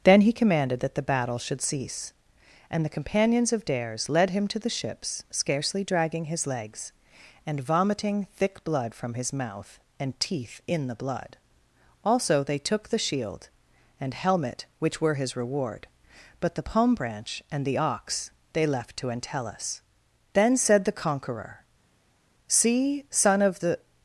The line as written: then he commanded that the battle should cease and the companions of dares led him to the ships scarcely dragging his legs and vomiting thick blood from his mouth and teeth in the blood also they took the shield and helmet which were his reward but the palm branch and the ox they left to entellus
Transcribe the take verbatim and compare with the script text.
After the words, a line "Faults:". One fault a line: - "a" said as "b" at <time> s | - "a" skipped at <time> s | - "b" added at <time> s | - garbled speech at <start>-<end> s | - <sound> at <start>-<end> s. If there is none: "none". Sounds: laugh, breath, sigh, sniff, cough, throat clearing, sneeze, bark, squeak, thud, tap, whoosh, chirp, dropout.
then he commanded that the battle should cease and the companions of dares led him to the ships scarcely dragging his legs and vomiting thick blood from his mouth and teeth in the blood also they took the shield and helmet which were his reward but the palm branch and the ox they left to entellus then said the conqueror see son of the
Faults:
- "then said the conqueror see son of the" added at 20.3 s